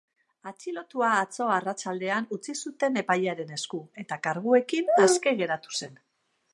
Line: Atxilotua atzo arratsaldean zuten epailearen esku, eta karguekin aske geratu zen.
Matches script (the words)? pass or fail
fail